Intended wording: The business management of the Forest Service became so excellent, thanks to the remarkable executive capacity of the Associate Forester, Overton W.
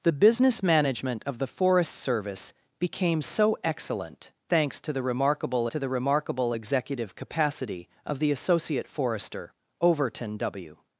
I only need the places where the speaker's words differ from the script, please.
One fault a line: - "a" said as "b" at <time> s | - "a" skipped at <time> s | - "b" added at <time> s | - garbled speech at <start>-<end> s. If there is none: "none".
- "to the remarkable" added at 5.7 s